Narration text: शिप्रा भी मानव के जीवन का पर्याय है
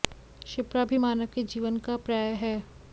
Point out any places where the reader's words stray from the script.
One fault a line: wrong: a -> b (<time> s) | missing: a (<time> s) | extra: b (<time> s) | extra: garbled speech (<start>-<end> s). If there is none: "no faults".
no faults